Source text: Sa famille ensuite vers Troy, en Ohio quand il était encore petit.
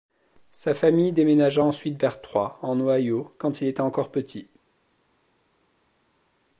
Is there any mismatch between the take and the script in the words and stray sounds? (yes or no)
yes